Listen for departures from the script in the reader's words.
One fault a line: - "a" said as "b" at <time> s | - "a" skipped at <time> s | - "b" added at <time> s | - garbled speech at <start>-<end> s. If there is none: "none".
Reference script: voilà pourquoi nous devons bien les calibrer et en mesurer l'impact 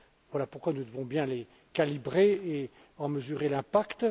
none